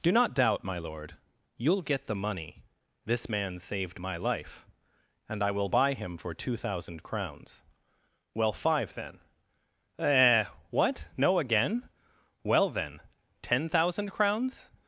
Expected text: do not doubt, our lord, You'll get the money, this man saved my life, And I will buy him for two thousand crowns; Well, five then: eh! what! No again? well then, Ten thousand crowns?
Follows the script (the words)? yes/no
no